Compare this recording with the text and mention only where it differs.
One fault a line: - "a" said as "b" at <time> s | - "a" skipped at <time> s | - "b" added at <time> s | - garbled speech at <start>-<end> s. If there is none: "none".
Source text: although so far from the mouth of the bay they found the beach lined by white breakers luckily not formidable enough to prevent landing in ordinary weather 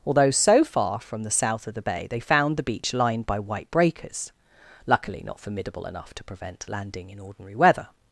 - "mouth" said as "south" at 1.3 s